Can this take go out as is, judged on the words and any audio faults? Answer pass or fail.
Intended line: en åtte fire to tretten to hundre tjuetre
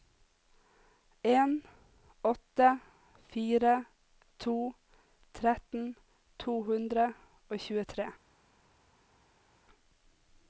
fail